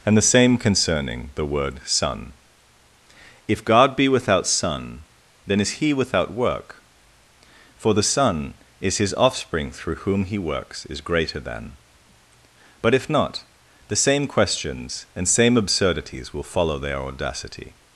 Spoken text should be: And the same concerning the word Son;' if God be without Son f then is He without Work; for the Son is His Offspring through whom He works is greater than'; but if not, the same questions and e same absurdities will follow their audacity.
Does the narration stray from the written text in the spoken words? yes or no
yes